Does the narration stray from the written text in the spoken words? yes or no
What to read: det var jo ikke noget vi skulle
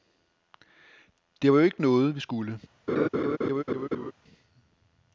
no